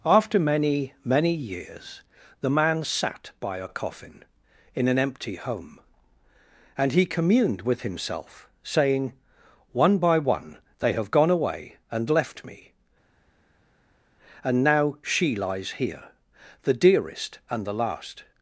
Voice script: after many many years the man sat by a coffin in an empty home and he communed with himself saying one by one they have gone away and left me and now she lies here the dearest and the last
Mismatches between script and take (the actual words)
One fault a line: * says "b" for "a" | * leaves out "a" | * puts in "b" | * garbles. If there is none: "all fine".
all fine